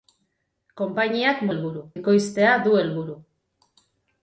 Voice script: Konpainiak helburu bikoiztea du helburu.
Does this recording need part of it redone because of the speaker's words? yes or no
no